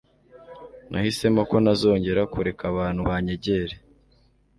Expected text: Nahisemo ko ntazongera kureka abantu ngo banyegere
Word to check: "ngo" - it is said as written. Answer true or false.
false